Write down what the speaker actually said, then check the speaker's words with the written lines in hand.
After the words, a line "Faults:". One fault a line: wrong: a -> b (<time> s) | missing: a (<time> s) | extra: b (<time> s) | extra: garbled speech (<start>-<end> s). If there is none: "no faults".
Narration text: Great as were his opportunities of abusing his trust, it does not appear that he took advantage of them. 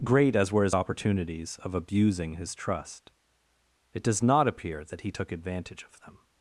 Great as were his opportunities of abusing his trust, it does not appear that he took advantage of them.
Faults:
no faults